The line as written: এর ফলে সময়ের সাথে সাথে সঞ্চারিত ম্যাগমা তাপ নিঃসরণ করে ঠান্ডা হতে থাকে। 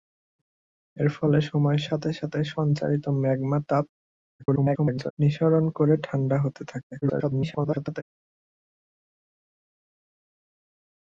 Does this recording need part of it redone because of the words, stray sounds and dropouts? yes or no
yes